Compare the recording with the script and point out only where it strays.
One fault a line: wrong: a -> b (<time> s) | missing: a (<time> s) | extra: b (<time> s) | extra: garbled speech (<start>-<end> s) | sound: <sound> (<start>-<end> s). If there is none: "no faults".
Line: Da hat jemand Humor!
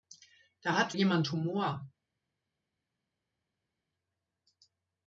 no faults